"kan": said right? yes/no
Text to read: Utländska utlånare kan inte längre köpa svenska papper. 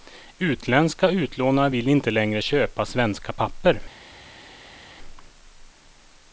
no